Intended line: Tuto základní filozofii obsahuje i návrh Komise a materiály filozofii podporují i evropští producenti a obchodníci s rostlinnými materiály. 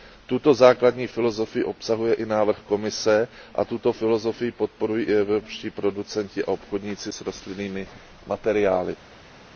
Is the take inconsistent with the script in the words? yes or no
yes